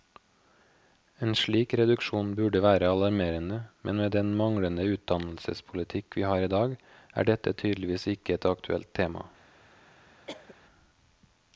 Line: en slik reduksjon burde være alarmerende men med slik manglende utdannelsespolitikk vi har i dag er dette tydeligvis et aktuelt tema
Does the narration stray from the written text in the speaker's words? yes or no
yes